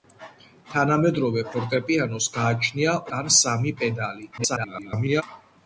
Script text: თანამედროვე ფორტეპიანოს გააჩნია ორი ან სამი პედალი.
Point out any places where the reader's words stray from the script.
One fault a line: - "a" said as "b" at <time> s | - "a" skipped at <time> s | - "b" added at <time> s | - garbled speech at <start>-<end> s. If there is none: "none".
- "ორი" skipped at 3.0 s
- garbled speech at 4.4-5.2 s